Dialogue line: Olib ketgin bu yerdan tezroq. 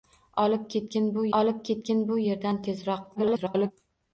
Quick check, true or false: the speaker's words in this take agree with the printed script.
false